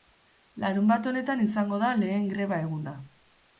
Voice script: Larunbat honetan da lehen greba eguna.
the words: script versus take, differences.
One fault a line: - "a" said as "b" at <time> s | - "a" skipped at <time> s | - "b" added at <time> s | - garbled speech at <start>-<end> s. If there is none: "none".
- "izango" added at 1.4 s